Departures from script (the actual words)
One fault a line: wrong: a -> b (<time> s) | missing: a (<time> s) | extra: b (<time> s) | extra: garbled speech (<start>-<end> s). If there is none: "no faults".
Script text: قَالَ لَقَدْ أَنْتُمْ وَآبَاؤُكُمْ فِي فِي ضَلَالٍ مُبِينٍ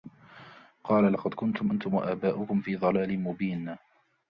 extra: كُنْتُمْ (1.3 s)
missing: فِي (2.8 s)